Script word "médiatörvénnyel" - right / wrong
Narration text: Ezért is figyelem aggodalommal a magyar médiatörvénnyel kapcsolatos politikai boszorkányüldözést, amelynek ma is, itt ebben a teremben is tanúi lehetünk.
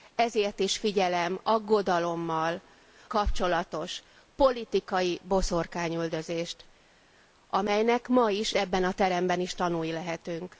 wrong